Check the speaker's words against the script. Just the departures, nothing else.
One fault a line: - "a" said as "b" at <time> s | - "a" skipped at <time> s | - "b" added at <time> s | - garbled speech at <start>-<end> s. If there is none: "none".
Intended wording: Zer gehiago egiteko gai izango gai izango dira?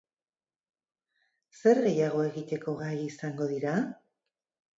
- "gai izango" skipped at 3.5 s